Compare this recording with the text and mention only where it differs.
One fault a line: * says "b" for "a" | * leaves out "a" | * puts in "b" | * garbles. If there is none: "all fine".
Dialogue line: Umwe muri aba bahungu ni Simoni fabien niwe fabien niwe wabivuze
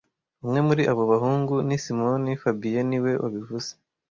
* says "abo" for "aba"
* leaves out "fabien niwe"